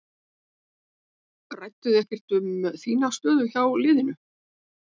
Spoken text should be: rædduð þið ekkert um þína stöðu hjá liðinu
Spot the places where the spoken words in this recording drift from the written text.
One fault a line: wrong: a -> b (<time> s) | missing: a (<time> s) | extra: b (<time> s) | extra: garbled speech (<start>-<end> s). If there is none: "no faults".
no faults